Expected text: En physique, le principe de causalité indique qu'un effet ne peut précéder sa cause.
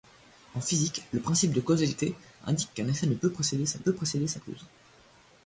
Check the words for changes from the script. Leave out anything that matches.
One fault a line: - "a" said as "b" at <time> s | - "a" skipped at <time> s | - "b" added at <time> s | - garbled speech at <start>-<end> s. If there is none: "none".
- "peut précéder sa" added at 3.8 s